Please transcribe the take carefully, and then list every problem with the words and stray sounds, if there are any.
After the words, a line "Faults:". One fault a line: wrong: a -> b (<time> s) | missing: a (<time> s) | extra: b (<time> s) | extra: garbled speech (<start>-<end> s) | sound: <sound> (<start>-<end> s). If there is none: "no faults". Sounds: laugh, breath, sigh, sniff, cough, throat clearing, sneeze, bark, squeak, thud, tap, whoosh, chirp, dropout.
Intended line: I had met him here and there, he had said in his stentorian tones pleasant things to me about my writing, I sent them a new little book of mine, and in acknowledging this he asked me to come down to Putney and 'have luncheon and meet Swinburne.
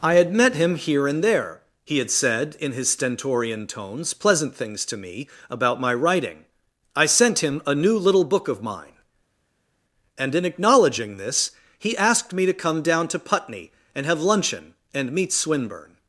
I had met him here and there, he had said in his stentorian tones pleasant things to me about my writing, I sent him a new little book of mine, and in acknowledging this he asked me to come down to Putney and 'have luncheon and meet Swinburne.
Faults:
wrong: them -> him (7.4 s)